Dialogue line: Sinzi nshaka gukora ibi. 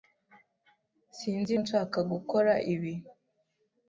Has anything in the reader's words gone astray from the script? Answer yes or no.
no